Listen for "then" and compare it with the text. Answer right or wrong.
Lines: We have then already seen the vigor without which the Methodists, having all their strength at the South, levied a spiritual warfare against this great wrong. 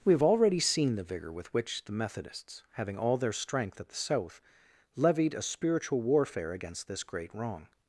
wrong